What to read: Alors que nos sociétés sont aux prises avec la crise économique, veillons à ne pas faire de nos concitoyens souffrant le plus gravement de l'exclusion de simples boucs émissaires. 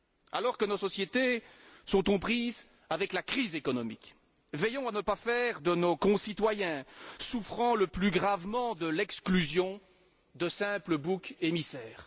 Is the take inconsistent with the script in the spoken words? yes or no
no